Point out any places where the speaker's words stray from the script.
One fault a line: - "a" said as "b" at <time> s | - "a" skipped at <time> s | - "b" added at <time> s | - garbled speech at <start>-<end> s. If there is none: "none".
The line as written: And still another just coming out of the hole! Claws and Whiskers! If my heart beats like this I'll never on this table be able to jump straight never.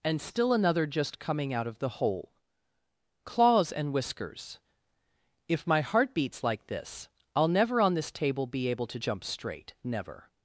none